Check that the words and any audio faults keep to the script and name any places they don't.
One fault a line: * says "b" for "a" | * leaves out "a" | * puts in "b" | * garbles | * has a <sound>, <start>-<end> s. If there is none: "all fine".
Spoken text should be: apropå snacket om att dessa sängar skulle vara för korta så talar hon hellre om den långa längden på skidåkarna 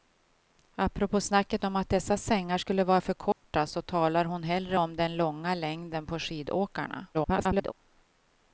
* has a dropout, 3.3-3.4 s
* garbles